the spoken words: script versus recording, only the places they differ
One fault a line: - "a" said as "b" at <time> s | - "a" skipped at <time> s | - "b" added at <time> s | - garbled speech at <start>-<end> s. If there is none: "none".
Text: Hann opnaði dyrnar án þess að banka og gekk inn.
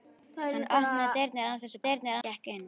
- "banka" said as "dyrnar" at 1.9 s